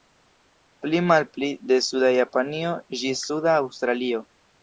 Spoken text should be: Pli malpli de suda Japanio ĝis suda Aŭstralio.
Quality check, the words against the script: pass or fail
pass